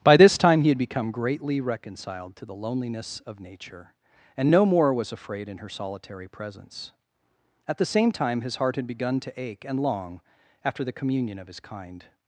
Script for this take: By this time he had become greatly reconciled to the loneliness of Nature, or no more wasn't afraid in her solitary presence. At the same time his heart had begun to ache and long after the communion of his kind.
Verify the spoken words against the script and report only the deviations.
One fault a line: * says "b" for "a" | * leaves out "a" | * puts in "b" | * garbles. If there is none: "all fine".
* says "and" for "or"
* says "was" for "wasn't"